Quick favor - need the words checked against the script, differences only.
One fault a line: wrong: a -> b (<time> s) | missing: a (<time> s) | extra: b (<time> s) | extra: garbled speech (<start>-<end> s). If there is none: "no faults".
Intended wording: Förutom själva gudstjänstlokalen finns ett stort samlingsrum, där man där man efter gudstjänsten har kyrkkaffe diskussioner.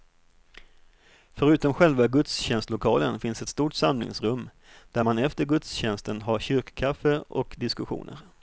missing: där man (5.2 s)
extra: och (7.2 s)